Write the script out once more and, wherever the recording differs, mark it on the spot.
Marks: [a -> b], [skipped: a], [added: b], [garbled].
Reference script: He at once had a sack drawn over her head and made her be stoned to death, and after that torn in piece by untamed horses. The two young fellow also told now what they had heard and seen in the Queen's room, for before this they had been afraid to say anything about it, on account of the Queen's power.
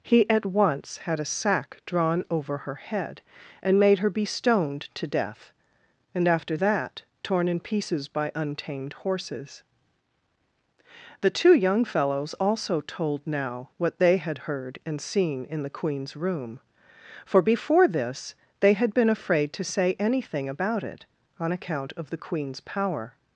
He at once had a sack drawn over her head and made her be stoned to death, and after that torn in [piece -> pieces] by untamed horses. The two young [fellow -> fellows] also told now what they had heard and seen in the Queen's room, for before this they had been afraid to say anything about it, on account of the Queen's power.